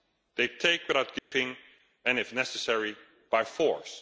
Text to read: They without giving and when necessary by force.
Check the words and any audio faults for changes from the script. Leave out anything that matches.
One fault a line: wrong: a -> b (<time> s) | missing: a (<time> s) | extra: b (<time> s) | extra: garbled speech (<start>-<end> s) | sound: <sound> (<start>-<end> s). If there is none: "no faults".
extra: take (0.5 s)
sound: dropout (1.2-1.3 s)
wrong: when -> if (2.2 s)